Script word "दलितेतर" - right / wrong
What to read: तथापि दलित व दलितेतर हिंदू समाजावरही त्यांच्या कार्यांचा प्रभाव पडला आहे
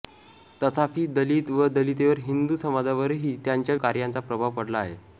right